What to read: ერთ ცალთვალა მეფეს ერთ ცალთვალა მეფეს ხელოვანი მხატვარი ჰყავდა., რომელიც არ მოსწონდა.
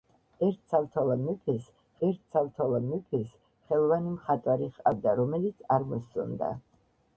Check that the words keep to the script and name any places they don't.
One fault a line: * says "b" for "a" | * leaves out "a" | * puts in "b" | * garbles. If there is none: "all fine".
all fine